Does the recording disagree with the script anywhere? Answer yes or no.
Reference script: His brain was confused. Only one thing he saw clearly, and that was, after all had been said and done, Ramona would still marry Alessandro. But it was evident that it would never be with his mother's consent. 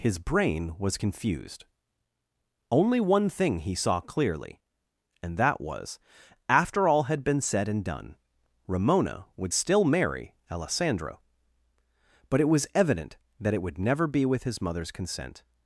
no